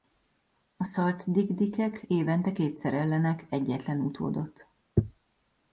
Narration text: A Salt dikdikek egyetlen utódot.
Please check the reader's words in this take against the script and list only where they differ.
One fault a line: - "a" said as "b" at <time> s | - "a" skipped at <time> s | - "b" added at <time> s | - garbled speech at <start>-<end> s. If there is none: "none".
- "évente kétszer ellenek" added at 2.1 s